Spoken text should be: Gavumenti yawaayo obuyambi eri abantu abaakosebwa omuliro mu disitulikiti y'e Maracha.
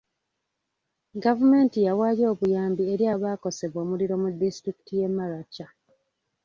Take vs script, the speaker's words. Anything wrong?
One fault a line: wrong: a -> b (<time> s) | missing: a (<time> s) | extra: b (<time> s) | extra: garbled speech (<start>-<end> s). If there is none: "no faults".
missing: abantu (3.0 s)